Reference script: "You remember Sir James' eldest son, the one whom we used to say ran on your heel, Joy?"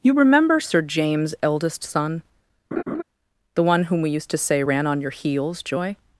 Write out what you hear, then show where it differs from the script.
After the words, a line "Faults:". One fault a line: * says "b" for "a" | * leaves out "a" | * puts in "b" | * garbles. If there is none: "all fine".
"You remember Sir James' eldest son, the one whom we used to say ran on your heels, Joy?"
Faults:
* says "heels" for "heel"